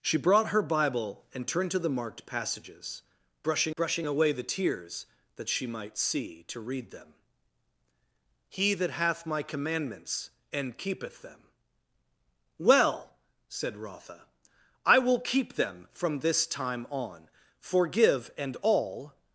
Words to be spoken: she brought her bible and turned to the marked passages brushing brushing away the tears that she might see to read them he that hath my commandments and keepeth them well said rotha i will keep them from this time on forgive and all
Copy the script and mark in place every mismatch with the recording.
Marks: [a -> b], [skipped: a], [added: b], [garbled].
she brought her bible and turned to the marked passages brushing brushing away the tears that she might see to read them he that hath my commandments and keepeth them well said rotha i will keep them from this time on forgive and all